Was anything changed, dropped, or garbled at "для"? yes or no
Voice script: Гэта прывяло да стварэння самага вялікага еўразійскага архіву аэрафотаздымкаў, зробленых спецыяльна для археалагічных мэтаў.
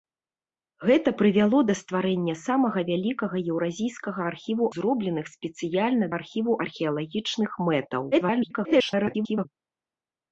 yes